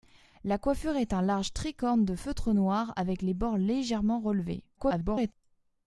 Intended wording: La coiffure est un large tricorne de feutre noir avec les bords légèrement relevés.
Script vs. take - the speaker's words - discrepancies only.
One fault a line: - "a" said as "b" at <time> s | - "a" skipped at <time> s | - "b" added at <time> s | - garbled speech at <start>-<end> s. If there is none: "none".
- garbled speech at 4.8-5.3 s